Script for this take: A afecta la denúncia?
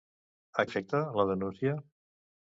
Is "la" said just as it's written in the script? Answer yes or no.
yes